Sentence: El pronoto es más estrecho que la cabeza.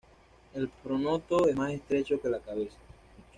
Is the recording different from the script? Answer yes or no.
no